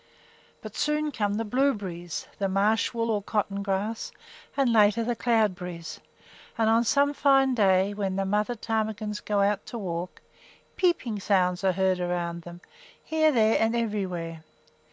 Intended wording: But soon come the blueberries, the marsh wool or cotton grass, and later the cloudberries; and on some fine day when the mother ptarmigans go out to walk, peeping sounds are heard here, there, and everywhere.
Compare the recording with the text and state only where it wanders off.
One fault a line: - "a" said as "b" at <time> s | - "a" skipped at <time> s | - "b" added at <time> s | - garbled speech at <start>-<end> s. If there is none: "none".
- "around them" added at 12.0 s